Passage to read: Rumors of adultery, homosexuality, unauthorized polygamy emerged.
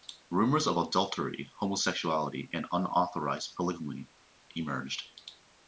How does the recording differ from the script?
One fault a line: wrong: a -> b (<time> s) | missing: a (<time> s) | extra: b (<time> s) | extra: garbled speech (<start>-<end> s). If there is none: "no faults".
extra: and (2.5 s)